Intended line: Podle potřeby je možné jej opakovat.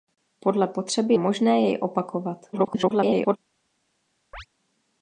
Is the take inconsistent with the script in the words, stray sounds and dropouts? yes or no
yes